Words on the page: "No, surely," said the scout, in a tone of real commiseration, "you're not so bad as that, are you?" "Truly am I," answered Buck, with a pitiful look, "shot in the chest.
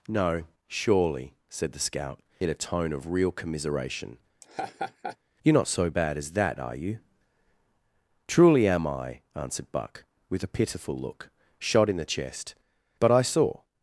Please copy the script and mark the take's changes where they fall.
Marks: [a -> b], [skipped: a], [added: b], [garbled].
"No, surely," said the scout, in a tone of real commiseration, "you're not so bad as that, are you?" "Truly am I," answered Buck, with a pitiful look, "shot in the chest. [added: But I saw]